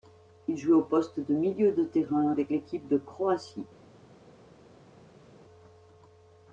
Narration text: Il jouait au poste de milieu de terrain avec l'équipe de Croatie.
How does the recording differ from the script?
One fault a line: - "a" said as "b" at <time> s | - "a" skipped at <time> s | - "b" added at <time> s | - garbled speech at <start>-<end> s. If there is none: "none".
none